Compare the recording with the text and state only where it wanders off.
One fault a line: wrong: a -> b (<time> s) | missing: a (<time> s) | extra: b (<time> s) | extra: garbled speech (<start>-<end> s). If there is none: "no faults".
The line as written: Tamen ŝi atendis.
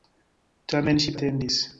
no faults